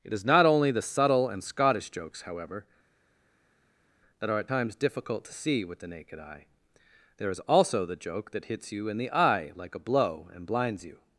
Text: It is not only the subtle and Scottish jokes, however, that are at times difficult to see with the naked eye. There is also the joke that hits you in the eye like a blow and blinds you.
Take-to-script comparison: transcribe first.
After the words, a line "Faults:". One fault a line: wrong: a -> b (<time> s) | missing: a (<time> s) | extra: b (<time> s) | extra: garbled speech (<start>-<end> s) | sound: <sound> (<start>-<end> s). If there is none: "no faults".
It is not only the subtle and Scottish jokes, however, that are at times difficult to see with the naked eye. There is also the joke that hits you in the eye like a blow and blinds you.
Faults:
no faults